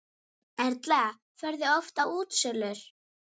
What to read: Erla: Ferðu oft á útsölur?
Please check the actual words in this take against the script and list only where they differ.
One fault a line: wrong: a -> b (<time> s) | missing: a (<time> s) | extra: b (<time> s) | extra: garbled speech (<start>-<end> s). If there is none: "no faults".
no faults